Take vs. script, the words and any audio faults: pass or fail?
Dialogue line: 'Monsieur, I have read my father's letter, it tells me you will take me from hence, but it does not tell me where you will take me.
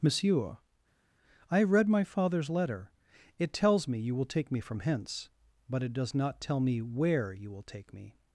pass